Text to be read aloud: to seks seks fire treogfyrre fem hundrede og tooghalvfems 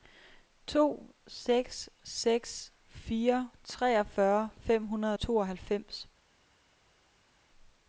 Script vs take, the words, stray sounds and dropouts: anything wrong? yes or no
yes